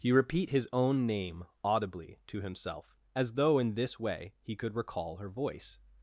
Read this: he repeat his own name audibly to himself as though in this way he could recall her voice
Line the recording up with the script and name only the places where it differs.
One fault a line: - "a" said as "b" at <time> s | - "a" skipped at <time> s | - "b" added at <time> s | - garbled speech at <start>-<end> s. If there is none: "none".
none